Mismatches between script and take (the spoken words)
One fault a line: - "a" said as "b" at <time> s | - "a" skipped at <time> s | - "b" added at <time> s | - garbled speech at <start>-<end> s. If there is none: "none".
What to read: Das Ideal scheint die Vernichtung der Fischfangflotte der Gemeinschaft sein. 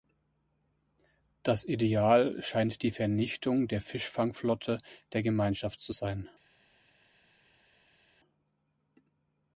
- "zu" added at 5.8 s